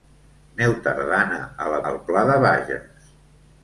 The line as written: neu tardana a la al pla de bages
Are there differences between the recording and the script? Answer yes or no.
no